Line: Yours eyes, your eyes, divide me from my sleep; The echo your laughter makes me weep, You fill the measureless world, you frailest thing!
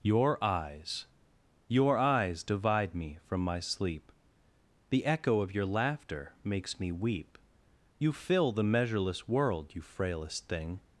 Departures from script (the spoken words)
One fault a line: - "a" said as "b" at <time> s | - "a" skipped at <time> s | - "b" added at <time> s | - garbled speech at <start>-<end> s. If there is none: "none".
- "Yours" said as "Your" at 0.0 s
- "of" added at 5.4 s